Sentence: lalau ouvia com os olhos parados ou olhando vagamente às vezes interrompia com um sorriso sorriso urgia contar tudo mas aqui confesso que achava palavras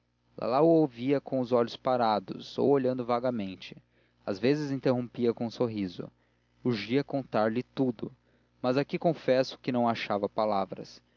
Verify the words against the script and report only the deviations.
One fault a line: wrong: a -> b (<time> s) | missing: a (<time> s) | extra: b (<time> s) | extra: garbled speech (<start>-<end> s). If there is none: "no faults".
missing: sorriso (6.1 s)
extra: lhe (7.5 s)
extra: não (9.7 s)